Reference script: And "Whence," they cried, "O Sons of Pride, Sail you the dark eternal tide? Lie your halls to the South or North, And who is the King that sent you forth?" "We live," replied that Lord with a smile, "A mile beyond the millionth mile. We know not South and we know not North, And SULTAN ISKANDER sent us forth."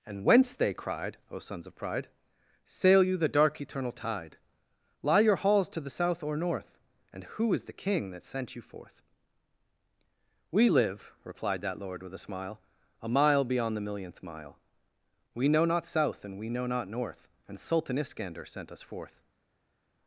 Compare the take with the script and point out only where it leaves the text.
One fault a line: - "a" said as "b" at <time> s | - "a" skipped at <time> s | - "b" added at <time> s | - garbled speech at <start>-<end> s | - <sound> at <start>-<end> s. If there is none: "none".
none